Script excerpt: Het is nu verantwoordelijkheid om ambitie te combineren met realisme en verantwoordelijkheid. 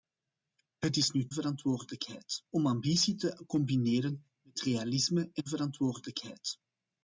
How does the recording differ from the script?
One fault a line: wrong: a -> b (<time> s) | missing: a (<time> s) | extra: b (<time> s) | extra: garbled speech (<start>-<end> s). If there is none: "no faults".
no faults